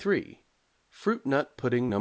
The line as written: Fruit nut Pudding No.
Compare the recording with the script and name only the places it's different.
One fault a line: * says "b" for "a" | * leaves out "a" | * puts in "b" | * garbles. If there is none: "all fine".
all fine